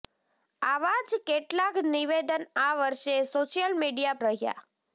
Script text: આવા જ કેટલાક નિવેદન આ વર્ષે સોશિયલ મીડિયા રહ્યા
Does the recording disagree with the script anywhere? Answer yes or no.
no